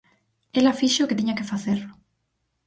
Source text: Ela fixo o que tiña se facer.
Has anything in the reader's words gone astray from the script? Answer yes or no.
yes